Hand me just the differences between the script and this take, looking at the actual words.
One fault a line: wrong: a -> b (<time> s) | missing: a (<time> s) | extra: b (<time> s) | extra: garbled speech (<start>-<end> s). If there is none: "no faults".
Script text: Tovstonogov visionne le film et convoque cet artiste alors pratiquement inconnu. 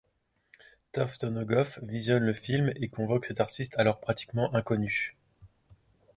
no faults